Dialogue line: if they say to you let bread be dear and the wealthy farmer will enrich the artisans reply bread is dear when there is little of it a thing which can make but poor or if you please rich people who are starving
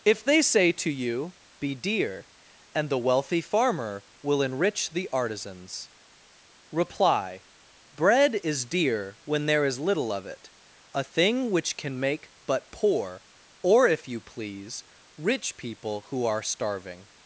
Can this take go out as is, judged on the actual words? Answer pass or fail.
fail